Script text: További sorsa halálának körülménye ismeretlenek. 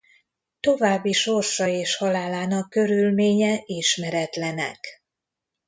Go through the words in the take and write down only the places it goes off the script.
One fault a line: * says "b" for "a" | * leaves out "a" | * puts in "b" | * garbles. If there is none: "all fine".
* puts in "és"